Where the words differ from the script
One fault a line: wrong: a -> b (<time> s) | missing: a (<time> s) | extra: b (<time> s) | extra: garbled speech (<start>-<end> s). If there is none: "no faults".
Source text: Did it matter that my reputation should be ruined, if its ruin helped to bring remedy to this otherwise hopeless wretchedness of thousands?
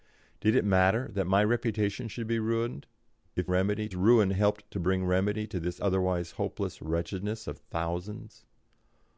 wrong: its -> remedy (3.5 s)